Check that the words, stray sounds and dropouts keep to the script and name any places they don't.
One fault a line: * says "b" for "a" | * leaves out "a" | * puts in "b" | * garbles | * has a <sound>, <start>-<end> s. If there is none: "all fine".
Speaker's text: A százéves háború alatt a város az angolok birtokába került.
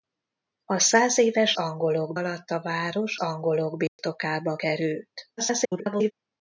* says "angolok" for "háború"
* leaves out "az"
* has a dropout, 3.9-4.0 s
* garbles